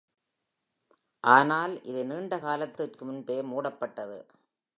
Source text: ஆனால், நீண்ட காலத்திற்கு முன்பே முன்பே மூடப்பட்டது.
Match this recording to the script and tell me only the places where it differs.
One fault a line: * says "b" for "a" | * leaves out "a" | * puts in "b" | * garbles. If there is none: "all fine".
* puts in "இது"
* leaves out "முன்பே"